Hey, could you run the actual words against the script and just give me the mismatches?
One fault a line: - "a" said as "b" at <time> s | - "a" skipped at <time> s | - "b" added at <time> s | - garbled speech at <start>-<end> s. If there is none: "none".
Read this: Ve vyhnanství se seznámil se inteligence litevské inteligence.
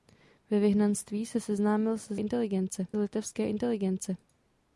none